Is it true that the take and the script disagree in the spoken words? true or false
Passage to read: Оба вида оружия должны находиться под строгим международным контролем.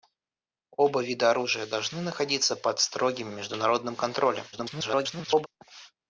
true